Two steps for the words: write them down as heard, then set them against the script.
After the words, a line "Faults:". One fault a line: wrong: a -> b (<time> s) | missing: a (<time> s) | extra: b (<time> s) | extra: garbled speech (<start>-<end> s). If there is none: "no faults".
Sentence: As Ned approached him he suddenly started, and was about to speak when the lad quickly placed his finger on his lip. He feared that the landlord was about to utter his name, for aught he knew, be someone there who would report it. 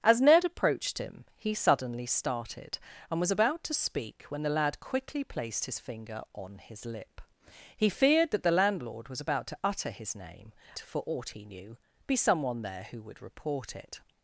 As Ned approached him he suddenly started, and was about to speak when the lad quickly placed his finger on his lip. He feared that the landlord was about to utter his name, for aught he knew, be someone there who would report it.
Faults:
no faults